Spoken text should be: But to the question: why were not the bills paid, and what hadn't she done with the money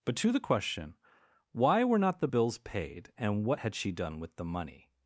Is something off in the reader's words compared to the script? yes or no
yes